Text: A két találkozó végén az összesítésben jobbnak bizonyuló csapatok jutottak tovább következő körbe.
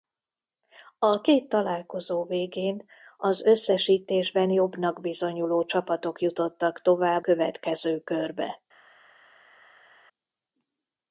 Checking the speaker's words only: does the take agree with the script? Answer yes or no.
yes